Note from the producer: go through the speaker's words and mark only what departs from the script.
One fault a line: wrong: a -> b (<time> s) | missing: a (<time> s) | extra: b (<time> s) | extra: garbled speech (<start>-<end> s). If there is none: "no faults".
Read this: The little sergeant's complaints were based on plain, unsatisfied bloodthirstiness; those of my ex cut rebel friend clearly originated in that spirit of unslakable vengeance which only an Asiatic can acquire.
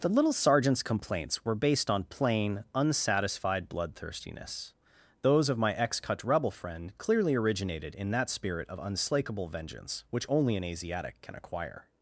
no faults